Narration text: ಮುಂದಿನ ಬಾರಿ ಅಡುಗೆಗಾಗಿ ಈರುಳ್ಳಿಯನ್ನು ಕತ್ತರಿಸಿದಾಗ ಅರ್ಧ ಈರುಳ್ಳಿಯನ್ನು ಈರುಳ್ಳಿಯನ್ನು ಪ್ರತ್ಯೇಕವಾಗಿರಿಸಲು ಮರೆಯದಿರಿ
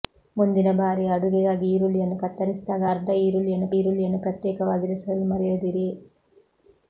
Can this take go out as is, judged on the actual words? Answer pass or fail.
pass